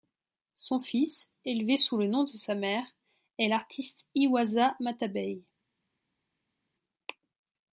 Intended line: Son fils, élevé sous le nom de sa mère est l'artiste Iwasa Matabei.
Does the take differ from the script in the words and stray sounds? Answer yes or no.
no